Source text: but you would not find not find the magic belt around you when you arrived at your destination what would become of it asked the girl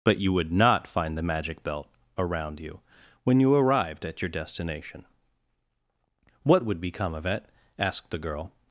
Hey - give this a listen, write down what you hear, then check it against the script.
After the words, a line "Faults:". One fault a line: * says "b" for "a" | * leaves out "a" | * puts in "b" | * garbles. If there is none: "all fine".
but you would not find the magic belt around you when you arrived at your destination what would become of it asked the girl
Faults:
* leaves out "not find"